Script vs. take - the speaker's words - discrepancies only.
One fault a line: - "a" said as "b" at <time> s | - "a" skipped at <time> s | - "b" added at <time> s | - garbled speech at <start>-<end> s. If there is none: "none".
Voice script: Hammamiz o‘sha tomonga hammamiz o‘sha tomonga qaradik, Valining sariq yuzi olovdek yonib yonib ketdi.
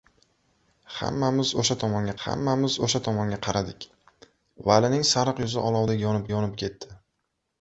none